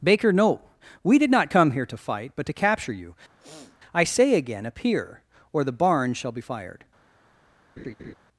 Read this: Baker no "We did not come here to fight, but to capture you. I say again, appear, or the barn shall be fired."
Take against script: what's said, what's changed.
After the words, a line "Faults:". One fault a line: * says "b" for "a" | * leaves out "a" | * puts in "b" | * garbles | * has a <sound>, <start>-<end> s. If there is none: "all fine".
Baker no "We did not come here to fight, but to capture you. I say again, appear, or the barn shall be fired."
Faults:
* has a sniff, 3.4-3.8 s
* has a laugh, 7.8-8.1 s